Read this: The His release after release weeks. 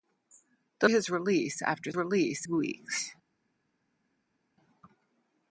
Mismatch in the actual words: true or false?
false